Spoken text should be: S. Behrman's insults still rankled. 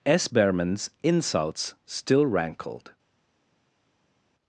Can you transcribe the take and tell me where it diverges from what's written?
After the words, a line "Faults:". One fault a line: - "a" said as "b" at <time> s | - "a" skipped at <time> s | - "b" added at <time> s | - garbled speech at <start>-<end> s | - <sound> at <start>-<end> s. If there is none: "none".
S. Behrman's insults still rankled.
Faults:
none